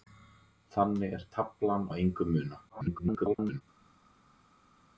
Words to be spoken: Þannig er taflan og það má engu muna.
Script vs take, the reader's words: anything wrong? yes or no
yes